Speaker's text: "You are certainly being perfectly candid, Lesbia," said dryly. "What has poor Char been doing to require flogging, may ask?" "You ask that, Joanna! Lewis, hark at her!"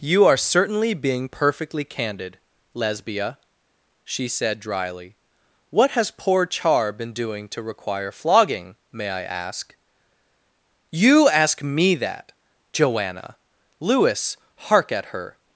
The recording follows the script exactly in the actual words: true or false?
false